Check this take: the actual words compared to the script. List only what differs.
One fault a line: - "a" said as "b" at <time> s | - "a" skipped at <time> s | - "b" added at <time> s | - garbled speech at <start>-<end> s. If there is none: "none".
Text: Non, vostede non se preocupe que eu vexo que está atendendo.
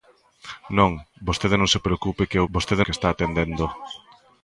- "vexo" said as "vostede" at 2.5 s